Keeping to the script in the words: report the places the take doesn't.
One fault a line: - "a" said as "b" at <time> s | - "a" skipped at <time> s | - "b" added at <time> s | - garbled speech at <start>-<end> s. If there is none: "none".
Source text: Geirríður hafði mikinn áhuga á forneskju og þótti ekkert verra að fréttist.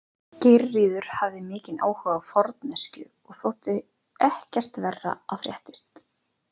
none